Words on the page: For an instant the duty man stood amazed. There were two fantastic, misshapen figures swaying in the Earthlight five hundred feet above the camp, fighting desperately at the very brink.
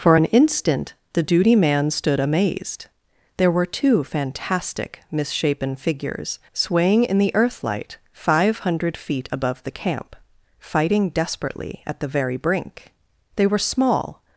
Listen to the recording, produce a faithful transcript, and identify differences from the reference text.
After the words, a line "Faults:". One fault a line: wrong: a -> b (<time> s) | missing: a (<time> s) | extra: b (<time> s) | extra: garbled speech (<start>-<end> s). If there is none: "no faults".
For an instant the duty man stood amazed. There were two fantastic, misshapen figures swaying in the Earthlight five hundred feet above the camp, fighting desperately at the very brink. They were small
Faults:
extra: They were small (13.4 s)